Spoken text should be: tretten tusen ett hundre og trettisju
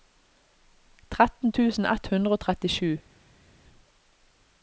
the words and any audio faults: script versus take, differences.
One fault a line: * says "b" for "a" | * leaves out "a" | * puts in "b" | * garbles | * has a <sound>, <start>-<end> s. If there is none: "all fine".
all fine